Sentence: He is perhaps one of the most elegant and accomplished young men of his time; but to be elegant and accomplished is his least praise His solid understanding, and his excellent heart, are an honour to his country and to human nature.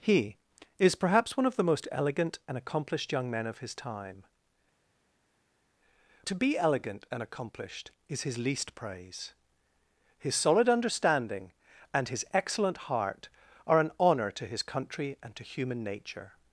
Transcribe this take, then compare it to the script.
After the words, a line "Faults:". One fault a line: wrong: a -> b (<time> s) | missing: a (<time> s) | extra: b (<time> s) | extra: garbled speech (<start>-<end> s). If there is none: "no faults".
He is perhaps one of the most elegant and accomplished young men of his time; to be elegant and accomplished is his least praise His solid understanding, and his excellent heart, are an honour to his country and to human nature.
Faults:
missing: but (4.2 s)